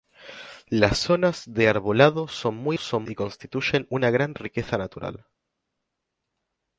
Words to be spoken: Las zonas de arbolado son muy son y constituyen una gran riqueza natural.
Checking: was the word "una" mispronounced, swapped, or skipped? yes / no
no